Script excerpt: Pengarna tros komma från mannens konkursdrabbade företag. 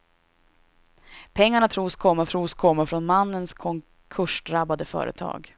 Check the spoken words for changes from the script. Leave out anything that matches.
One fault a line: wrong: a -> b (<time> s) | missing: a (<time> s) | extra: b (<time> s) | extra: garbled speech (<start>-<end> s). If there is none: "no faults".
extra: tros komma (2.2 s)